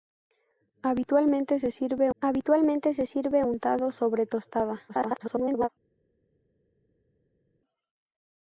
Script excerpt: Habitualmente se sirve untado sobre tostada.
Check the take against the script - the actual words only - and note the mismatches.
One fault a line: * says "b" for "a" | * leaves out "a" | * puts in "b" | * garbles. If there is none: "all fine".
* puts in "habitualmente se sirve"
* garbles